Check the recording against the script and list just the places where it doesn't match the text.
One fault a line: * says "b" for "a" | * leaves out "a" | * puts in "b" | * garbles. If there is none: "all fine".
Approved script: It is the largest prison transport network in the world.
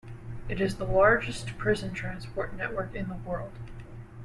all fine